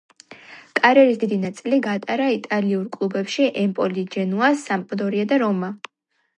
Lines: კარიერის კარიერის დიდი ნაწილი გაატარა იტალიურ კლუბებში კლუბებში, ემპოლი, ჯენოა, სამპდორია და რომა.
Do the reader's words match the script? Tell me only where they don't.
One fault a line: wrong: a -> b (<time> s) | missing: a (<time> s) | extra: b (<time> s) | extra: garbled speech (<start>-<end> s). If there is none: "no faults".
missing: კარიერის (1.2 s)
missing: კლუბებში (3.5 s)